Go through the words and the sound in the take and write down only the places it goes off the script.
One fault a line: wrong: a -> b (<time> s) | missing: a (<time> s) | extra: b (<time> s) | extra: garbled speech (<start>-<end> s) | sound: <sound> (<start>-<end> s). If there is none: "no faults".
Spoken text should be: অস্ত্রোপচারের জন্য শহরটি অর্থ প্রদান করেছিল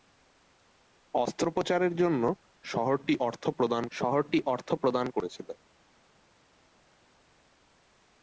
extra: শহরটি অর্থ প্রদান (3.9 s)